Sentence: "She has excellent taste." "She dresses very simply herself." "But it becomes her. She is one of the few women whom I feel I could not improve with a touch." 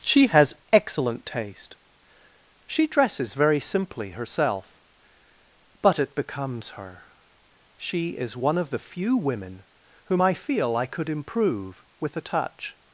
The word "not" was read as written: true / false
false